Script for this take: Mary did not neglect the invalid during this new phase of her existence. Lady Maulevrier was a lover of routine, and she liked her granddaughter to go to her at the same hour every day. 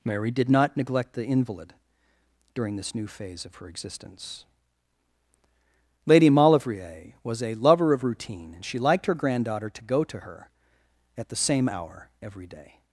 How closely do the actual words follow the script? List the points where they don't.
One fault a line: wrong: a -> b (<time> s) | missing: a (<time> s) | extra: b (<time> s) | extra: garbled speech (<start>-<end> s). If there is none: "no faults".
no faults